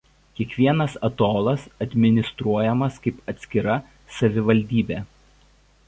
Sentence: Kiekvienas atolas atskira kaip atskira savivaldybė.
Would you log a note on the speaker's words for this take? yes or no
yes